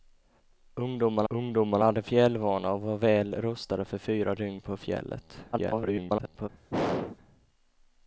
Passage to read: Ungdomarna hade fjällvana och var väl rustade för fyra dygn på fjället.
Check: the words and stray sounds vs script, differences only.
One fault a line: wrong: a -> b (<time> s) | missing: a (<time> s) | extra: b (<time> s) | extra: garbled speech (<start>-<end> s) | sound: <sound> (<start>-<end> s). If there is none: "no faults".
extra: ungdomarna (1.3 s)
extra: garbled speech (5.5-6.5 s)
sound: throat clearing (6.7-7.2 s)